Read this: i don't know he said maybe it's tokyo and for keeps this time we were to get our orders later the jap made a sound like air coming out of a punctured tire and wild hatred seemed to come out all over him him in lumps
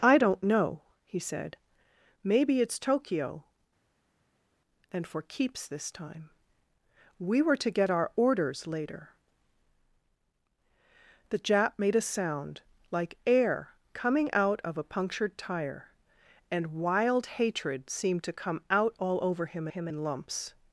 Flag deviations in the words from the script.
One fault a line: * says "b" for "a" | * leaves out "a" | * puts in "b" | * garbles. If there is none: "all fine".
all fine